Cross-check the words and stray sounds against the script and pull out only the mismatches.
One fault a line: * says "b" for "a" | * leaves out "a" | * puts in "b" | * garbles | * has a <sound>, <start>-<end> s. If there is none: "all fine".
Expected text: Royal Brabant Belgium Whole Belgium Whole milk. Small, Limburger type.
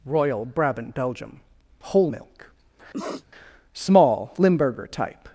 * leaves out "Belgium Whole"
* has a sniff, 2.9-3.3 s